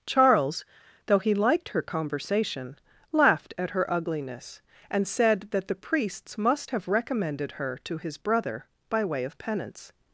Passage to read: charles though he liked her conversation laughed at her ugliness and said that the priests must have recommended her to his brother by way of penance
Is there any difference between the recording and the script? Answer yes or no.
no